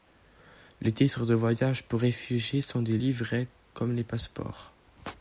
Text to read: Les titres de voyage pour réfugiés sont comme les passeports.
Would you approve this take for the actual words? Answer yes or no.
no